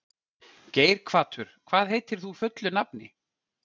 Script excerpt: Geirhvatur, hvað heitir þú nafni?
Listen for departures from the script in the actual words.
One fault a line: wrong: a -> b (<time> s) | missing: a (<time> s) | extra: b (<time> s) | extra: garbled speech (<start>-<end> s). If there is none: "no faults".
extra: fullu (2.4 s)